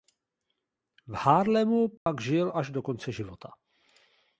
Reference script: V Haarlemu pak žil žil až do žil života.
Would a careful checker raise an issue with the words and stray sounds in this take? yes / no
yes